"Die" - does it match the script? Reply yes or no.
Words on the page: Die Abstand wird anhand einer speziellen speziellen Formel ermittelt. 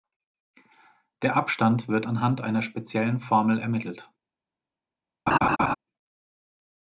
no